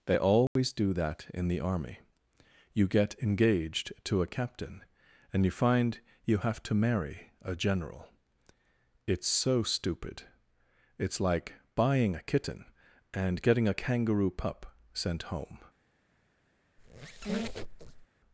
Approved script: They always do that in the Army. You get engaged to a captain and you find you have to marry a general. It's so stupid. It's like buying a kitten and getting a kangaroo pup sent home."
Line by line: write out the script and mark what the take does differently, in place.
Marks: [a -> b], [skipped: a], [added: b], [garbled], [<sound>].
They always [dropout] do that in the Army. You get engaged to a captain and you find you have to marry a general. It's so stupid. It's like buying a kitten and getting a kangaroo pup sent home." [squeak]